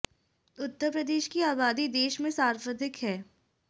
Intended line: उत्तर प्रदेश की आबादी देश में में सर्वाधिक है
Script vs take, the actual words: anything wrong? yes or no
yes